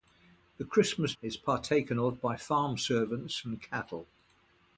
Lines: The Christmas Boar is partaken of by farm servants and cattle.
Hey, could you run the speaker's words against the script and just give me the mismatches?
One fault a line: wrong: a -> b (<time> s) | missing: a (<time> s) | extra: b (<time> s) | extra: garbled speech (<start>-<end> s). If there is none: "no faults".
missing: Boar (1.1 s)